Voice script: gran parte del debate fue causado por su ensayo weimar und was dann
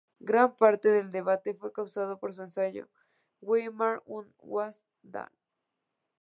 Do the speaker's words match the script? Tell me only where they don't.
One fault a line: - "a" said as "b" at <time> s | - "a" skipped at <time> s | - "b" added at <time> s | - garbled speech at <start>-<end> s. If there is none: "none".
none